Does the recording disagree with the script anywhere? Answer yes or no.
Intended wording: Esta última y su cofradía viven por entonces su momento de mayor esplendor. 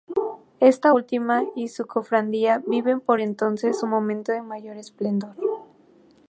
no